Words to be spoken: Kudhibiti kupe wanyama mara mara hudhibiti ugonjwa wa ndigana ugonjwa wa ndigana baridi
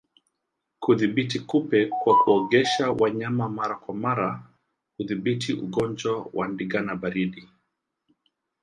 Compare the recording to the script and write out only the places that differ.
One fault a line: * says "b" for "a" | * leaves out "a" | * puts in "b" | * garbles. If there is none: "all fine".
* puts in "kwa kuogesha"
* puts in "kwa"
* leaves out "ugonjwa wa ndigana"